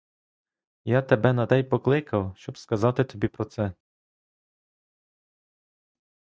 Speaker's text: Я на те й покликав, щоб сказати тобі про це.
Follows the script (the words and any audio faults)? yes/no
no